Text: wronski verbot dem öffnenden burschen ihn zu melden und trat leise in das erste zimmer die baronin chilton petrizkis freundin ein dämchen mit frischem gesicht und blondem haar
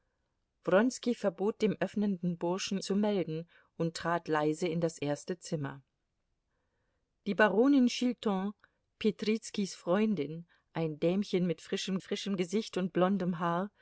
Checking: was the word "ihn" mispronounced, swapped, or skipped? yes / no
yes